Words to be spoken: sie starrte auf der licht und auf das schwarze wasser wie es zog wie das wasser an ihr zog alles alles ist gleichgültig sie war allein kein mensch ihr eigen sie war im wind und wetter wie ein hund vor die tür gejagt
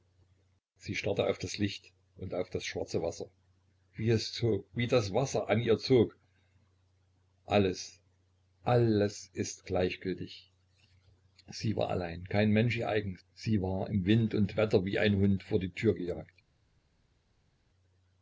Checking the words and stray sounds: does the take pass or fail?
fail